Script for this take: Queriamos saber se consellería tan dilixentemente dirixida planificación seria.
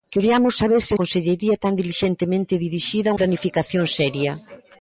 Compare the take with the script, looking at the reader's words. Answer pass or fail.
pass